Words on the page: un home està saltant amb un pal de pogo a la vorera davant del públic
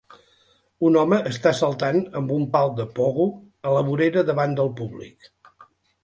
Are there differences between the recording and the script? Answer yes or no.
no